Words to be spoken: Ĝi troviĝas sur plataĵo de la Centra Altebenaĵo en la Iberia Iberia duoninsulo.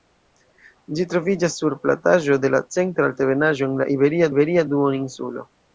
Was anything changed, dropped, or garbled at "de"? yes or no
no